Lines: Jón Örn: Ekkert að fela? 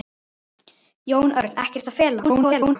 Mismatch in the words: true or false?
true